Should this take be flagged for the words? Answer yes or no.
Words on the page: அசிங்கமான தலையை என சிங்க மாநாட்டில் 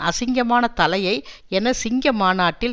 no